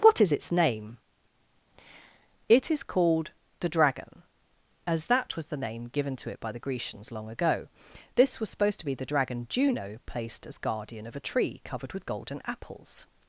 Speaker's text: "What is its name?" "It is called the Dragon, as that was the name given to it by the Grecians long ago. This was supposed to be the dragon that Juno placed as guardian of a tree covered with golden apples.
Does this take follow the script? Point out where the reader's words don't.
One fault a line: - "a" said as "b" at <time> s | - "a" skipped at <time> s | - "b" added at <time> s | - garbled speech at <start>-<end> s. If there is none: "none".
- "that" skipped at 9.5 s